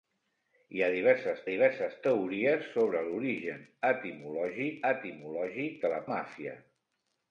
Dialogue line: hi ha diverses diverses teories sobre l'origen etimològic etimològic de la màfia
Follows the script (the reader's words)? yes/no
yes